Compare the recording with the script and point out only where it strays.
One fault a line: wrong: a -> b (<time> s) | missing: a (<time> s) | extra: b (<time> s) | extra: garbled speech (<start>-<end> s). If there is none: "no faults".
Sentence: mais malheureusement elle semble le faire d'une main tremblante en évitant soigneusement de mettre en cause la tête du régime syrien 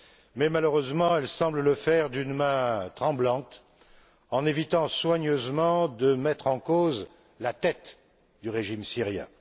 no faults